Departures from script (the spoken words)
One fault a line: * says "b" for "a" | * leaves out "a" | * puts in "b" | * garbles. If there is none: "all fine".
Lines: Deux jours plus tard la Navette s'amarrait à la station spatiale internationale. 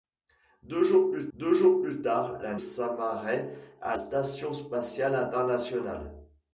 * puts in "deux jours plus"
* leaves out "Navette"
* leaves out "la"